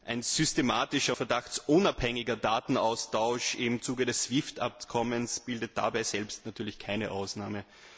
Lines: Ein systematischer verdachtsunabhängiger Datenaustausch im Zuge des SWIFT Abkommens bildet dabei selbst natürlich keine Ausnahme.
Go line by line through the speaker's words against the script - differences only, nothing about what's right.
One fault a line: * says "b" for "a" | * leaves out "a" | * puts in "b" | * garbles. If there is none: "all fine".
all fine